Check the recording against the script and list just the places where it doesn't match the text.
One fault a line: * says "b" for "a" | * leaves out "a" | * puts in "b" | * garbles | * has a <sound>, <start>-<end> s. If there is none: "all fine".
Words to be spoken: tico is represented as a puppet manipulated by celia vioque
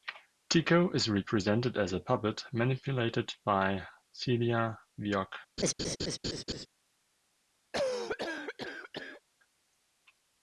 * has a laugh, 5.6-6.7 s
* has a cough, 7.7-9.2 s